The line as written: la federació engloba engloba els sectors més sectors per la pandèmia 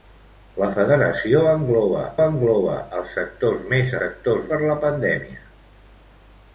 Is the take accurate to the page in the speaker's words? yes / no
yes